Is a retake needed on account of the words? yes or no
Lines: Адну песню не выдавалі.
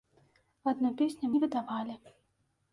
no